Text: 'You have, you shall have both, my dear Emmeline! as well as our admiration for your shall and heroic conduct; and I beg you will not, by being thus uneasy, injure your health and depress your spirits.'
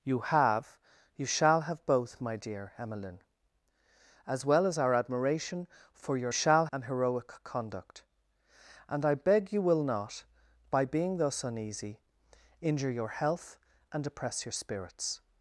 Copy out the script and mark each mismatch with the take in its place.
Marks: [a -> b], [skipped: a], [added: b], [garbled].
'You have, you shall have both, my dear Emmeline! as well as our admiration for your shall and heroic conduct; and I beg you will not, by being thus uneasy, injure your health and depress your spirits.'